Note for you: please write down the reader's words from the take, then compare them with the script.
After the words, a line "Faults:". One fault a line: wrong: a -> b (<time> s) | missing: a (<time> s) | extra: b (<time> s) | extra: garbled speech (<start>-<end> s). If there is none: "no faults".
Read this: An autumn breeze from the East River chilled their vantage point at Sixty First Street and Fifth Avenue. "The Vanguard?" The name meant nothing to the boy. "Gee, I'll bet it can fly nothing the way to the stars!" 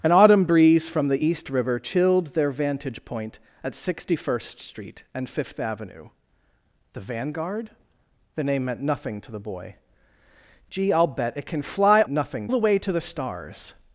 An autumn breeze from the East River chilled their vantage point at Sixty First Street and Fifth Avenue. "The Vanguard?" The name meant nothing to the boy. "Gee, I'll bet it can fly nothing the way to the stars!"
Faults:
no faults